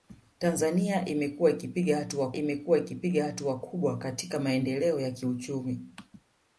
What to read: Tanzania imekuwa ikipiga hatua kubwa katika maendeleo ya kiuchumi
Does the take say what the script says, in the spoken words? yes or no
no